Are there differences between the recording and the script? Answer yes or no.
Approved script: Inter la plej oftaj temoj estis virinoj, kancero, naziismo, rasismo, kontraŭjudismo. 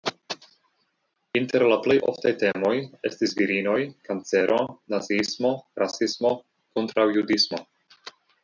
no